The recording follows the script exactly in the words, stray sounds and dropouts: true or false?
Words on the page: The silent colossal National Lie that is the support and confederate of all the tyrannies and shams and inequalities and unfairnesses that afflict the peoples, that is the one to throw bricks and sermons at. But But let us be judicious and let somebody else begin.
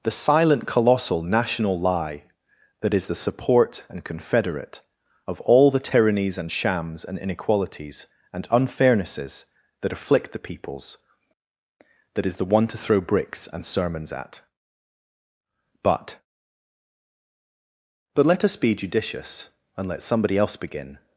true